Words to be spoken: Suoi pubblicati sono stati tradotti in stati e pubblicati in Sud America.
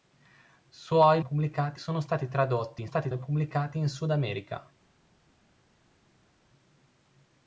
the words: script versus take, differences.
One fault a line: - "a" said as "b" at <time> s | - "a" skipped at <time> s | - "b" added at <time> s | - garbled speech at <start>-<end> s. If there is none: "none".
none